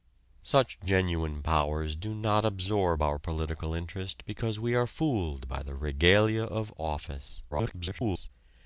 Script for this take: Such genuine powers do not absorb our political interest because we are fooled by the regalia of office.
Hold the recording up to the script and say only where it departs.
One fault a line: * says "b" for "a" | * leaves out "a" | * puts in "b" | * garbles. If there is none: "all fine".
* garbles